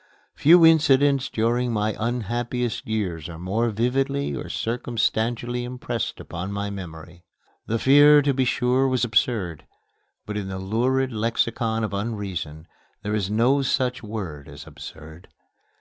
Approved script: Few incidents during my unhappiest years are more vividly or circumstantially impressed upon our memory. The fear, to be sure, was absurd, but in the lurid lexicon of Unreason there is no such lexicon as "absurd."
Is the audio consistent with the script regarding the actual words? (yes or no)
no